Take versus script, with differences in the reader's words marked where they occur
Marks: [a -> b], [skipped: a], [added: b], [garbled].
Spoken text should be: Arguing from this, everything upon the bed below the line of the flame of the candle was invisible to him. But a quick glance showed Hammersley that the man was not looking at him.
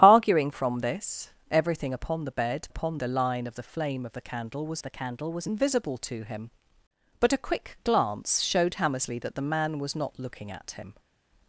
Arguing from this, everything upon the bed [below -> upon] the line of the flame of the candle was [added: the candle was] invisible to him. But a quick glance showed Hammersley that the man was not looking at him.